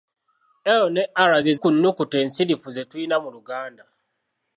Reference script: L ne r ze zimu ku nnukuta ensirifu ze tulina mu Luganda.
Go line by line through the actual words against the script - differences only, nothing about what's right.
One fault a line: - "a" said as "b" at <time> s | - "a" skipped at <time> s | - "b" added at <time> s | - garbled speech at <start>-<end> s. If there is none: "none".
- "zimu" skipped at 1.5 s